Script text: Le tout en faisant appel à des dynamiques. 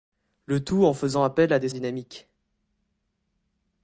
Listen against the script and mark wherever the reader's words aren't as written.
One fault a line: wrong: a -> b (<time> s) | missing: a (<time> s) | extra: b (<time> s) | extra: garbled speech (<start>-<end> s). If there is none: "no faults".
no faults